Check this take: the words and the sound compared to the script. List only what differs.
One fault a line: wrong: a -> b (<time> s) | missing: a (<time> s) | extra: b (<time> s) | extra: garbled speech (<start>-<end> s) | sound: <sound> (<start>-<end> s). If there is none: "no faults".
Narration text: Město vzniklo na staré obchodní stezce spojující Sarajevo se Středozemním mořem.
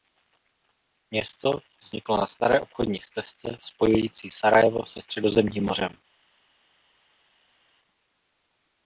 no faults